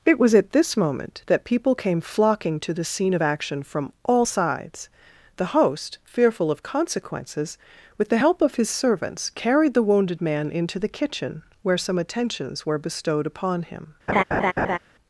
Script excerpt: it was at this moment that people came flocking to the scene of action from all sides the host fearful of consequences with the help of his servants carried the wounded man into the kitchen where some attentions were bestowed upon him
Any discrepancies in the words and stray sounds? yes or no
yes